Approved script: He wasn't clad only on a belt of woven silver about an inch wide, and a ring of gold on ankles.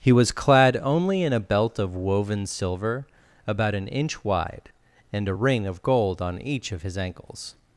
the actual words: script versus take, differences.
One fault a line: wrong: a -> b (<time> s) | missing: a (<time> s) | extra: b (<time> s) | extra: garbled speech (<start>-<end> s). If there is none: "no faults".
wrong: wasn't -> was (0.1 s)
wrong: on -> in (1.2 s)
extra: each of his (6.4 s)